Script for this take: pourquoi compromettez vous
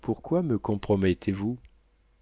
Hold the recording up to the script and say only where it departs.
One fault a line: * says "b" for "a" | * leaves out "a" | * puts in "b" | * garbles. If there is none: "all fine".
* puts in "me"